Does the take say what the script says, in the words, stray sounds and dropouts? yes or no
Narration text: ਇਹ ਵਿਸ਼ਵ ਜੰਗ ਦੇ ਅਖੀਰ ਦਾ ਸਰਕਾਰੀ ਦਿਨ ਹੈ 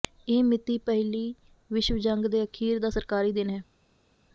no